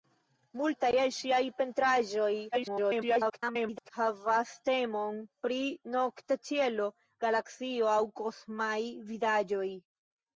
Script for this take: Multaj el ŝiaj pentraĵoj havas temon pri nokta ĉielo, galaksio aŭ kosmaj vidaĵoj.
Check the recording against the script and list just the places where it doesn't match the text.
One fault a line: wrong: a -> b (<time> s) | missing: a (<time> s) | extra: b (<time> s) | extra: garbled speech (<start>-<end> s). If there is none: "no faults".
extra: garbled speech (2.5-3.9 s)